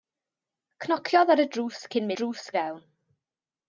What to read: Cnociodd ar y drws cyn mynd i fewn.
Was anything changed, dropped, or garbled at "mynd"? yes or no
yes